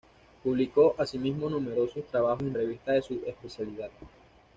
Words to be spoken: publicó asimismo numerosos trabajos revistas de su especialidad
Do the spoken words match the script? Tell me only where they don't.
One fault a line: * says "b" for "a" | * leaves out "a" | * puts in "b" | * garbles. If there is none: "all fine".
* puts in "en"